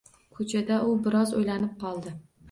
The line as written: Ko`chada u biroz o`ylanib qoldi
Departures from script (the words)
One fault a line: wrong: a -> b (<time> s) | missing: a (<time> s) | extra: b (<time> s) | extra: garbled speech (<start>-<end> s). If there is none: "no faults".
no faults